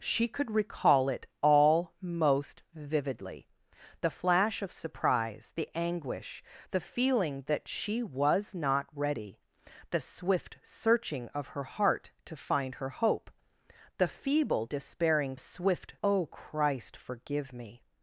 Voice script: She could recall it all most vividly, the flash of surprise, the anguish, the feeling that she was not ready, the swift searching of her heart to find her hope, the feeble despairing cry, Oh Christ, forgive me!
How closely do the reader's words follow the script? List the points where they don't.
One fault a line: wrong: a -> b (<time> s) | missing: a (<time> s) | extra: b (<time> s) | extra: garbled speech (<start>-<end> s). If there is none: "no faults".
wrong: cry -> swift (15.4 s)